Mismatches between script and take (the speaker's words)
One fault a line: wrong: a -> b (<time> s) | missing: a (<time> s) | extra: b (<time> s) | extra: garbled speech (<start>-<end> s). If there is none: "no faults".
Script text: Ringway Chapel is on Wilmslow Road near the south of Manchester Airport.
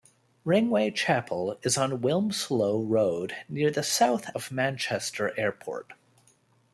no faults